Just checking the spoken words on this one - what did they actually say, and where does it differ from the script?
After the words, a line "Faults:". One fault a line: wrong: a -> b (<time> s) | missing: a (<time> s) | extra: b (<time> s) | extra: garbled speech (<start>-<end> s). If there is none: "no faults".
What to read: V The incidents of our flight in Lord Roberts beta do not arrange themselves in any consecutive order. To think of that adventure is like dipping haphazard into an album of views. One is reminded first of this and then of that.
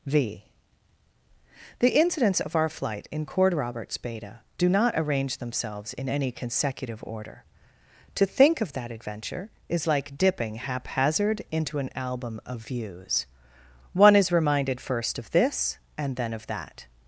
V The incidents of our flight in Cord Roberts beta do not arrange themselves in any consecutive order. To think of that adventure is like dipping haphazard into an album of views. One is reminded first of this and then of that.
Faults:
wrong: Lord -> Cord (3.2 s)